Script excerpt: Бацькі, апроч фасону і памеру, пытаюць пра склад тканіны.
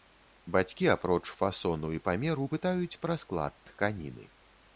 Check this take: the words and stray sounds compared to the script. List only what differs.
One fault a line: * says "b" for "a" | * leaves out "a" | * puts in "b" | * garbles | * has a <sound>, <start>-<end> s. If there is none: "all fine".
all fine